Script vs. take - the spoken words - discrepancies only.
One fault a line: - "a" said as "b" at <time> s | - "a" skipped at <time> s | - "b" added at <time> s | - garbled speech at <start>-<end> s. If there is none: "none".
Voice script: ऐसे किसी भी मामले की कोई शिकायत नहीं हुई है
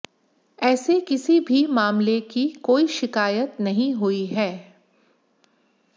none